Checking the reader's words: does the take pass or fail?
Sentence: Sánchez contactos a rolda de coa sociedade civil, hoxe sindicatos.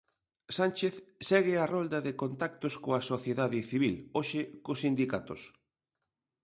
fail